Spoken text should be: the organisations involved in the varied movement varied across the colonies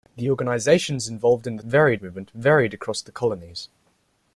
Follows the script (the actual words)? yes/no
yes